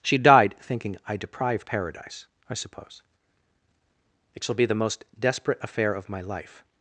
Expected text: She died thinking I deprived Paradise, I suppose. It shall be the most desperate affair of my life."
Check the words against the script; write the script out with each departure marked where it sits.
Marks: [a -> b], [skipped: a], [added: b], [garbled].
She died thinking I deprived Paradise, I suppose. It shall be the most desperate affair of my life."